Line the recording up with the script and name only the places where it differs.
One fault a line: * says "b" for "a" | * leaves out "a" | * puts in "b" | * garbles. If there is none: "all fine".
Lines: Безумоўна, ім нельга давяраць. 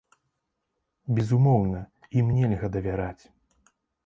all fine